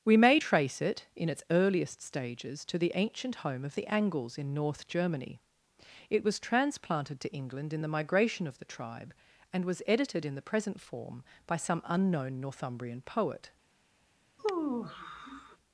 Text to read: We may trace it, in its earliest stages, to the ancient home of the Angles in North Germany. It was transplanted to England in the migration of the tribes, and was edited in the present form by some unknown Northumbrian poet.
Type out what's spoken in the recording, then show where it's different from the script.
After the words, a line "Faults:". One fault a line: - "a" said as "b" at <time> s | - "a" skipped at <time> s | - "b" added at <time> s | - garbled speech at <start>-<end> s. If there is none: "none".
We may trace it, in its earliest stages, to the ancient home of the Angles in North Germany. It was transplanted to England in the migration of the tribe, and was edited in the present form by some unknown Northumbrian poet.
Faults:
- "tribes" said as "tribe" at 8.6 s